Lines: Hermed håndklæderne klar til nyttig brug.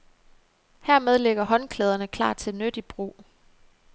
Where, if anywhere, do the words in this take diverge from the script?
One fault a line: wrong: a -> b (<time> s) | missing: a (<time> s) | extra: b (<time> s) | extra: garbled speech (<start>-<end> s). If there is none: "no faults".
extra: ligger (1.2 s)